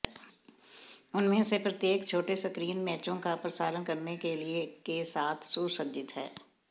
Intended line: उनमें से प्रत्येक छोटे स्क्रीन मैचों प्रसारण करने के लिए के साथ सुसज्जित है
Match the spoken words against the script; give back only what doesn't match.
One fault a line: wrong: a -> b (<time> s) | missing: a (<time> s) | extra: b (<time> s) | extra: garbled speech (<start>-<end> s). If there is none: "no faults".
extra: का (3.2 s)